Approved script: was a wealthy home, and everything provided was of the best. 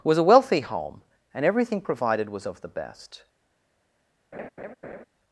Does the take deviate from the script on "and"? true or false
false